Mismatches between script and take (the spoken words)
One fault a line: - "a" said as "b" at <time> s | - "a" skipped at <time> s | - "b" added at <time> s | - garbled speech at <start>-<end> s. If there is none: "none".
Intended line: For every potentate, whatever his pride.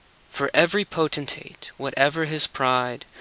none